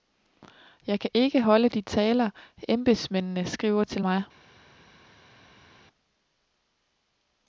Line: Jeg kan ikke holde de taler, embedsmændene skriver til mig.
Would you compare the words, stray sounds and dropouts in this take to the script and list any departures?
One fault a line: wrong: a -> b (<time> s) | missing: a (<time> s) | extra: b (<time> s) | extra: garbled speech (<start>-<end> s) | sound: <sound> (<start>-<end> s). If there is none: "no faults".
no faults